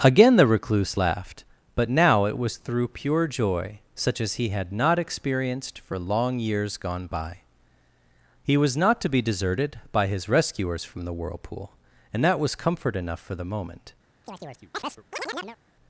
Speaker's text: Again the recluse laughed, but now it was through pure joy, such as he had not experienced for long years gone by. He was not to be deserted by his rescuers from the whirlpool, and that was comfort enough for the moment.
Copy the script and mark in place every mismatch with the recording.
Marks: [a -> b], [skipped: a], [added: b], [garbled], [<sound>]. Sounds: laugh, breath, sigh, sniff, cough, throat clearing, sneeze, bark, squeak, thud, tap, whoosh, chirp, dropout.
Again the recluse laughed, but now it was through pure joy, such as he had not experienced for long years gone by. He was not to be deserted by his rescuers from the whirlpool, and that was comfort enough for the moment. [chirp]